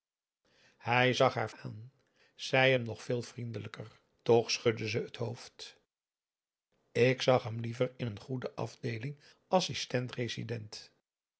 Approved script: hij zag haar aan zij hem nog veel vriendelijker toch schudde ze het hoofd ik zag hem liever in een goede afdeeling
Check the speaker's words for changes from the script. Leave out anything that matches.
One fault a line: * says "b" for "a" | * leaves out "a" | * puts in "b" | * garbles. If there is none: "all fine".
all fine